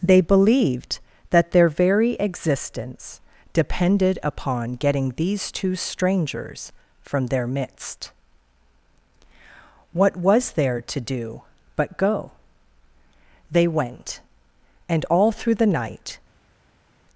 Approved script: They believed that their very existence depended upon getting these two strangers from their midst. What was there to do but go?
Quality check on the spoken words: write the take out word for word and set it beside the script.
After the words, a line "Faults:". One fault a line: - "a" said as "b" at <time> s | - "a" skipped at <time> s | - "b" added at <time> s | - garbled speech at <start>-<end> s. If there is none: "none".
They believed that their very existence depended upon getting these two strangers from their midst. What was there to do but go? They went, and all through the night
Faults:
- "They went and all through the night" added at 13.5 s